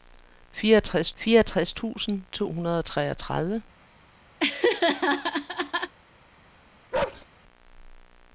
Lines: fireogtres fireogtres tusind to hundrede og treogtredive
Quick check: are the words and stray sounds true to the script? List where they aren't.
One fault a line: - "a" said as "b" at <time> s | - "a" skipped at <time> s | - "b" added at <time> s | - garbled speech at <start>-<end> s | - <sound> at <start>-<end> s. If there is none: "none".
- laugh at 4.4-5.9 s
- bark at 6.9-7.3 s